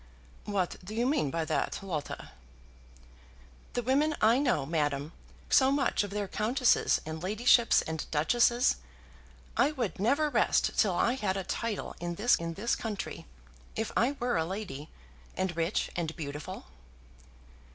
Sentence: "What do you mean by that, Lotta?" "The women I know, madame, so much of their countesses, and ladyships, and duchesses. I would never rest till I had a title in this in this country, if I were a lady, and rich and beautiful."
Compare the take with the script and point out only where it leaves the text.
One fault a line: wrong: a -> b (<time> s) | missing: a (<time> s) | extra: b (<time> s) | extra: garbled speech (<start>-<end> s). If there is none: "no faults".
no faults